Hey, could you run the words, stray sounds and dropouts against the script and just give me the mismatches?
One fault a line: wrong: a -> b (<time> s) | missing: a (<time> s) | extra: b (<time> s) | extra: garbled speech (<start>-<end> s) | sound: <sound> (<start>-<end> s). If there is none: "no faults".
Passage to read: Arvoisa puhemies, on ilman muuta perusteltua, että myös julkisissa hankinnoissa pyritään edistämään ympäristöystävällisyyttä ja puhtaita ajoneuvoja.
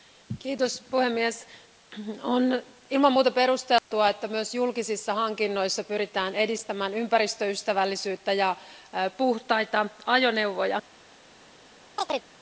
sound: dropout (3.8-3.9 s)
sound: chirp (12.0-12.3 s)